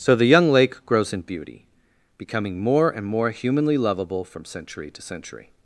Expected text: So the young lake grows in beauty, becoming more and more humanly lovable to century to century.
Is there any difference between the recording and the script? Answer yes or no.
yes